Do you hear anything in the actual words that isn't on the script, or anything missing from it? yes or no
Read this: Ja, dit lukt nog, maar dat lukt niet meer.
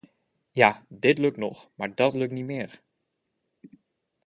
no